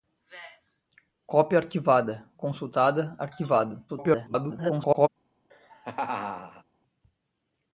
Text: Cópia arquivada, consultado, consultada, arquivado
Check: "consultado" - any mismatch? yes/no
yes